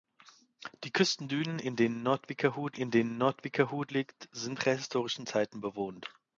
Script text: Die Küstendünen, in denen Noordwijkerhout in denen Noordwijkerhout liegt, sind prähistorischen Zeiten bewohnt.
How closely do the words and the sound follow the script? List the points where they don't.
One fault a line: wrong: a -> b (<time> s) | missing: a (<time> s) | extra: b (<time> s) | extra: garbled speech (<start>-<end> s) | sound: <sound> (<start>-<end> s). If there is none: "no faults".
no faults